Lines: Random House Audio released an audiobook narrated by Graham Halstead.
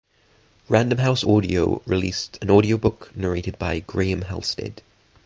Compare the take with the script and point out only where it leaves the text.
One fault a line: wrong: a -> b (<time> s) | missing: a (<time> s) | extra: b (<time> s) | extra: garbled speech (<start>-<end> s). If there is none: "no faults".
no faults